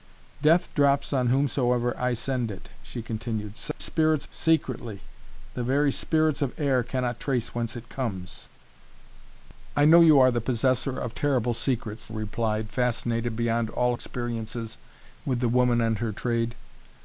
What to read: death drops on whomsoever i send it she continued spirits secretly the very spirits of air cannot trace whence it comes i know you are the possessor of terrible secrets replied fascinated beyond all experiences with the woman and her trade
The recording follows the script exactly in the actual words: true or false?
true